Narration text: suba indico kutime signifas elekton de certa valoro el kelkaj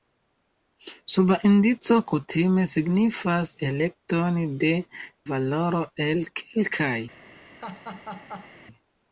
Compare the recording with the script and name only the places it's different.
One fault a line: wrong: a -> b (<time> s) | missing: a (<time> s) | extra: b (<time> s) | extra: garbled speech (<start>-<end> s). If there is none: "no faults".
missing: certa (4.7 s)